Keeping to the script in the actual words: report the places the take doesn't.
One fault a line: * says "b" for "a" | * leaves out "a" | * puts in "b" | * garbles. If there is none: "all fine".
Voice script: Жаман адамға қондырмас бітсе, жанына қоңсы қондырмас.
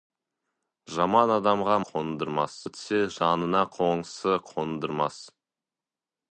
all fine